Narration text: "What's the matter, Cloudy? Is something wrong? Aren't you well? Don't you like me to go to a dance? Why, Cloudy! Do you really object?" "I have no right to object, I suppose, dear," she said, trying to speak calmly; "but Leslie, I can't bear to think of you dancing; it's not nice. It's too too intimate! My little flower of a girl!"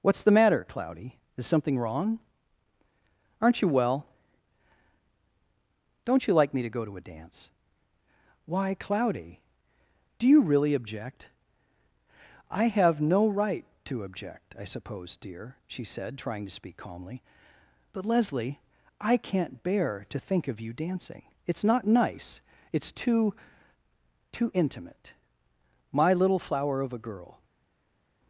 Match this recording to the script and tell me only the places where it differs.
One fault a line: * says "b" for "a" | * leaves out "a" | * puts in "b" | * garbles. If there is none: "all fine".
all fine